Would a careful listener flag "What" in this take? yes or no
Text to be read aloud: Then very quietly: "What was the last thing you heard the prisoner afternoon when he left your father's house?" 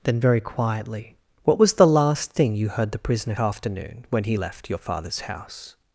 no